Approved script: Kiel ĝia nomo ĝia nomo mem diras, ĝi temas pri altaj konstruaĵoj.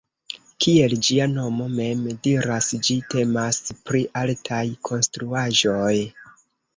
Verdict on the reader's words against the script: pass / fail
fail